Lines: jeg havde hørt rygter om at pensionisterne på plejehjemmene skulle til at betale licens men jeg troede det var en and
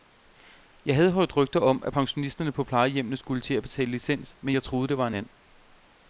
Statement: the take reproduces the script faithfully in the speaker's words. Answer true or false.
true